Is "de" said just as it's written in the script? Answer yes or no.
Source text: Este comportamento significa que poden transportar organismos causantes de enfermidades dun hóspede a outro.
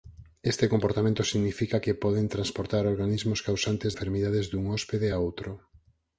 no